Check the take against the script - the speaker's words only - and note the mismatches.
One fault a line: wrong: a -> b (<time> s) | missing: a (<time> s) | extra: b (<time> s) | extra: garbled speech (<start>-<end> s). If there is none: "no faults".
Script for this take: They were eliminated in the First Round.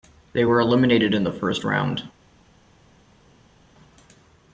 no faults